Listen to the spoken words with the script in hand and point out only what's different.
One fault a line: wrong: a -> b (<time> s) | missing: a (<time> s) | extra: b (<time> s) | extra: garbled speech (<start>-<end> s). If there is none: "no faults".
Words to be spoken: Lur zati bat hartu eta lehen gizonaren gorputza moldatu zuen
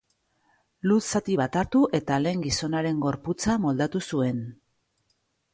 no faults